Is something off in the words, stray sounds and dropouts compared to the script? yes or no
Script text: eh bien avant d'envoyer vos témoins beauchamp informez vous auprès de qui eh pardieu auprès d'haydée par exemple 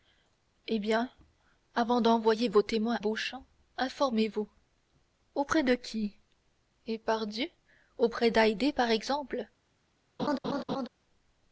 yes